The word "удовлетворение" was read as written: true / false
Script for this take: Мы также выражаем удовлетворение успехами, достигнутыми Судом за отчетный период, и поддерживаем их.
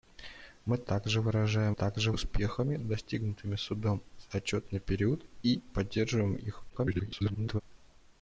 false